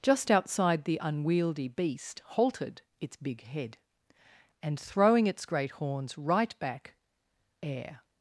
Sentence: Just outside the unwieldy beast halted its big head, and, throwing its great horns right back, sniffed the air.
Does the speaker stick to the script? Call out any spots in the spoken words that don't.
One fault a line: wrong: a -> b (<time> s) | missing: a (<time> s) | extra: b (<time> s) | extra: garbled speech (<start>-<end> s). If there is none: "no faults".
missing: sniffed the (6.9 s)